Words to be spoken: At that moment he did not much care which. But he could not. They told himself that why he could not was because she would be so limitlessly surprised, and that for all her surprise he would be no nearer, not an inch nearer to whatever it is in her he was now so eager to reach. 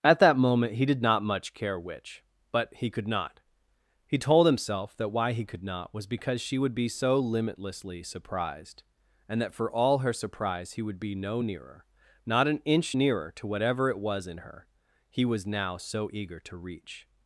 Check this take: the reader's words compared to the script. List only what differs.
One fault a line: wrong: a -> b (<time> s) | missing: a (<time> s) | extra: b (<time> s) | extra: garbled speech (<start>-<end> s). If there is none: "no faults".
wrong: They -> He (4.0 s)
wrong: is -> was (14.0 s)